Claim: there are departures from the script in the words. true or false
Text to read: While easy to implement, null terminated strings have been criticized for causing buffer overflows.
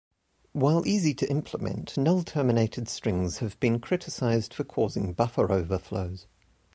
false